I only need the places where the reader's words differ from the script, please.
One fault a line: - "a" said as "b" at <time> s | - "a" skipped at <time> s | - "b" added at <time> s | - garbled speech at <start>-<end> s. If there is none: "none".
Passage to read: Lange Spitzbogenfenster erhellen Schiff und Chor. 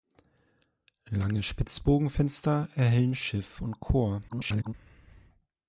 - garbled speech at 4.3-4.7 s